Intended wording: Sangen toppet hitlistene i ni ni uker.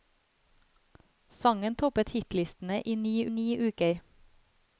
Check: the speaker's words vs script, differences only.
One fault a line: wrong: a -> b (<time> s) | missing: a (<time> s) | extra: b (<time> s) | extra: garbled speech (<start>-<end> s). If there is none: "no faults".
no faults